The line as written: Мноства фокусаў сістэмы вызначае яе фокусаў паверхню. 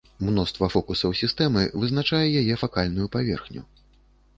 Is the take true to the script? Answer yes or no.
no